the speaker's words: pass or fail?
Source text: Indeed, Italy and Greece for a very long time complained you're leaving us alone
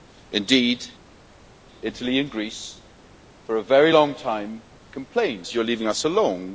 pass